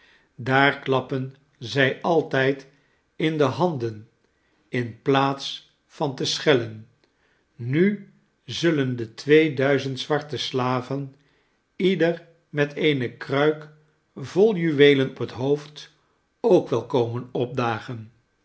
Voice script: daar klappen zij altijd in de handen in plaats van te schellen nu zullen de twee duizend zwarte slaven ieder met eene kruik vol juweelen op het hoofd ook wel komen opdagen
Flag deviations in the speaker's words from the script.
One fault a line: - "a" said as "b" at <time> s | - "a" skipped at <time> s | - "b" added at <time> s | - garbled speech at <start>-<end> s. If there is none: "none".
- "op" skipped at 15.2 s